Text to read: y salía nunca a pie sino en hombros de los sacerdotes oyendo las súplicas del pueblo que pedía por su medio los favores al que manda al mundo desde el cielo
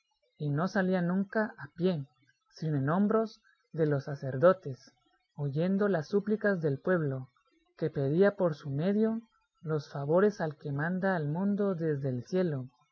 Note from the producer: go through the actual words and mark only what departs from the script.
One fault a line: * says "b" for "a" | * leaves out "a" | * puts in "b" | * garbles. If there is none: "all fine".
* puts in "no"